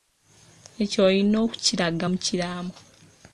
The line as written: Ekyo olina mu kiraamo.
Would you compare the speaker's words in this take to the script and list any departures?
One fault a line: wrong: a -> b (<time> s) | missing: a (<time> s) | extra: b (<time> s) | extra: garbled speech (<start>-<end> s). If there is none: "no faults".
extra: okukiraga (1.4 s)